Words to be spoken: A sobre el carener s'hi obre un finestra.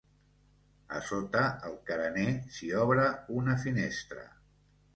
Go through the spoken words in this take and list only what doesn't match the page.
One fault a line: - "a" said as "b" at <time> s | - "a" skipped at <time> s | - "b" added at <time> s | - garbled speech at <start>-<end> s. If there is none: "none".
- "sobre" said as "sota" at 1.1 s
- "un" said as "una" at 3.4 s